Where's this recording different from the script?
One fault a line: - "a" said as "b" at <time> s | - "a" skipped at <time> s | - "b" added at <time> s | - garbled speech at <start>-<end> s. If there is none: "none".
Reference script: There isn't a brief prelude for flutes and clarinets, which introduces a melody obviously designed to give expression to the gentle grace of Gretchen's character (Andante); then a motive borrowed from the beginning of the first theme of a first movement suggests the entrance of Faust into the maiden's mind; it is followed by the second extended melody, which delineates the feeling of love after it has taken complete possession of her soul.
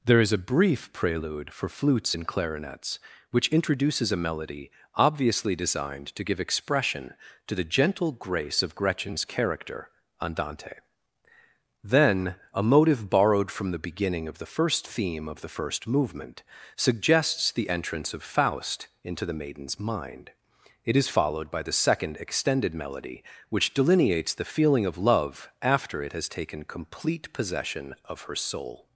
- "isn't" said as "is" at 0.2 s
- "a" said as "the" at 15.4 s